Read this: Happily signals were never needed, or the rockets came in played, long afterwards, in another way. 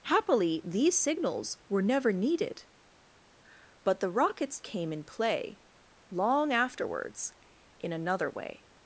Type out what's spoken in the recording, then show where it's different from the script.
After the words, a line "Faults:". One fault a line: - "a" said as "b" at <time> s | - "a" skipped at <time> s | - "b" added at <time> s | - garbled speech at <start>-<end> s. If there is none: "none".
Happily these signals were never needed, but the rockets came in play, long afterwards, in another way.
Faults:
- "these" added at 0.7 s
- "or" said as "but" at 3.8 s
- "played" said as "play" at 5.0 s